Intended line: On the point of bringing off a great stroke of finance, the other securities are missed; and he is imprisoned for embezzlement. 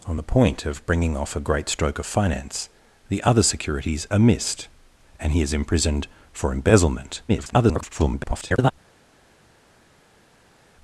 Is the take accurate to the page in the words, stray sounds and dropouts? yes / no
no